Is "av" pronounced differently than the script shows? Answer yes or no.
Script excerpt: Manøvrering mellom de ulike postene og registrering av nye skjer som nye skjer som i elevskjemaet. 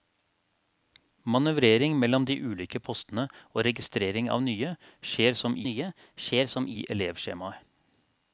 no